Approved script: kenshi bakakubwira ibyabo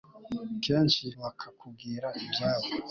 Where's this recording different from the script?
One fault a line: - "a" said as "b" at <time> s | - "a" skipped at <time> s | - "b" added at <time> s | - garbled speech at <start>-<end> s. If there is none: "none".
none